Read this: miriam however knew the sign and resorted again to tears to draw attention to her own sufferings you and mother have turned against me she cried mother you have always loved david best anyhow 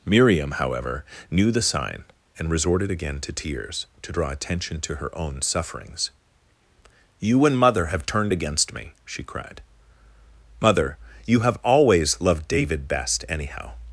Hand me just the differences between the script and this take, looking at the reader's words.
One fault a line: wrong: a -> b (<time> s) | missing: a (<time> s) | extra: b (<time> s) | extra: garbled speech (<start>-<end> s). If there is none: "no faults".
no faults